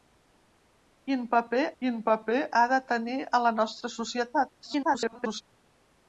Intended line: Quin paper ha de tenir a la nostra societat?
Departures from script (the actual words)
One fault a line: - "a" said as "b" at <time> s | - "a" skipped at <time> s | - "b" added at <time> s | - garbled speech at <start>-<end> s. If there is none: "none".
- "quin paper" added at 1.8 s
- garbled speech at 4.6-5.4 s